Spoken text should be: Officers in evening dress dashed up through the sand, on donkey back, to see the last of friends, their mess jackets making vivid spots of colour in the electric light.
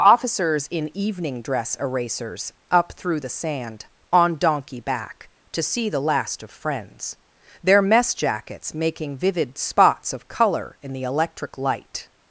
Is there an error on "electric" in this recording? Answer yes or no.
no